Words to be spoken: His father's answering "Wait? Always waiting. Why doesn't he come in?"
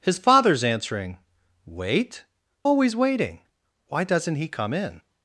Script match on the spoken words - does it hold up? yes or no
yes